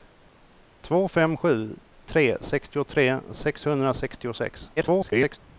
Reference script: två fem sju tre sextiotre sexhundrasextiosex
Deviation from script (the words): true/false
true